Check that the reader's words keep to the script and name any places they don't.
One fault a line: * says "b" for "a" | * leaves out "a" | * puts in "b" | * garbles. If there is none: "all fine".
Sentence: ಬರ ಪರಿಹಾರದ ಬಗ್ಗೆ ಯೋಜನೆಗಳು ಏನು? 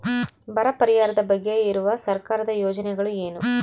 * puts in "ಇರುವ ಸರ್ಕಾರದ"